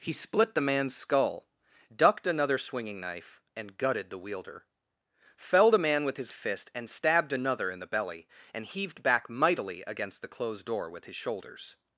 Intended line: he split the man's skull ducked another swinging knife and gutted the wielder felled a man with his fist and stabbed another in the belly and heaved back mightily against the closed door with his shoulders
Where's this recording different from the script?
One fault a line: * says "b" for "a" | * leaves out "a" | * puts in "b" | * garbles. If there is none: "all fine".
all fine